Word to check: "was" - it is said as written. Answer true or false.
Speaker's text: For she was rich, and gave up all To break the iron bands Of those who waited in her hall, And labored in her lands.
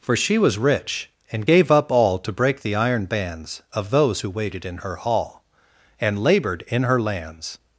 true